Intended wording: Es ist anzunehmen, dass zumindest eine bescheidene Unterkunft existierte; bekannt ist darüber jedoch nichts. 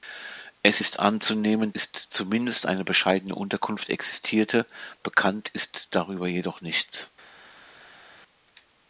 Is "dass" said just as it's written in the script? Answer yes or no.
no